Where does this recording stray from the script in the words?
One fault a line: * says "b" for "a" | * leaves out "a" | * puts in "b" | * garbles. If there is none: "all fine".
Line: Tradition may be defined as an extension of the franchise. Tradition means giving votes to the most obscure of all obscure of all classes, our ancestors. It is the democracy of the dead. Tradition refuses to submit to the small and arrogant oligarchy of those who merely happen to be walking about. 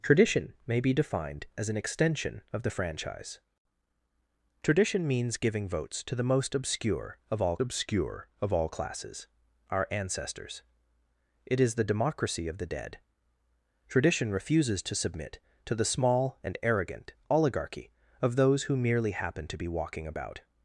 all fine